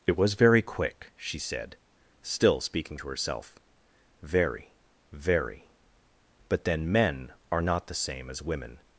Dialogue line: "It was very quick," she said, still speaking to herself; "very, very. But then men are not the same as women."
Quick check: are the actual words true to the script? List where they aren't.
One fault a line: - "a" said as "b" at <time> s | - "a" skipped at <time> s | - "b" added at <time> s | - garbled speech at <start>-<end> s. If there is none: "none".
none